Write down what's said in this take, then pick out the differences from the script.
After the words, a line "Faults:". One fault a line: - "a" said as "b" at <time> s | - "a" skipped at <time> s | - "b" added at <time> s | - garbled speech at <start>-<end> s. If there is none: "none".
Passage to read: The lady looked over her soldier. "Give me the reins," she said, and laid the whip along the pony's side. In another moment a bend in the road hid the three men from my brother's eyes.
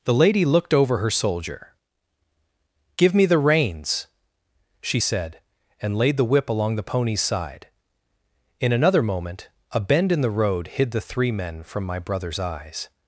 The lady looked over her soldier. "Give me the reins," she said, and laid the whip along the pony's side. In another moment a bend in the road hid the three men from my brother's eyes.
Faults:
none